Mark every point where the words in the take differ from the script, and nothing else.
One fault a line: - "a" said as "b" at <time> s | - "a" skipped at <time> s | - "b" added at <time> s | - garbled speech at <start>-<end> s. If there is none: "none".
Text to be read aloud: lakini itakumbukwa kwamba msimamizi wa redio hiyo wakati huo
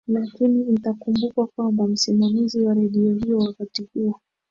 none